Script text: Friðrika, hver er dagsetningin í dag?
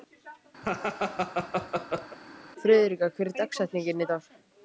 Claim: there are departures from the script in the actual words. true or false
false